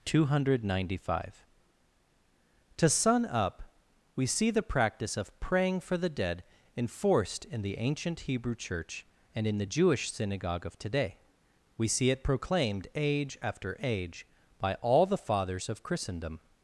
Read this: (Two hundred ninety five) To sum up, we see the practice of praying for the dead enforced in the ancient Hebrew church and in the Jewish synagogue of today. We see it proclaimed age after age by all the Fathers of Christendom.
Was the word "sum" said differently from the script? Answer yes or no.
yes